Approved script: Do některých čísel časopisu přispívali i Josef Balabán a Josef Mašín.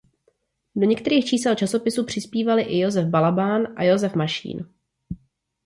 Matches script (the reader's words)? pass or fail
pass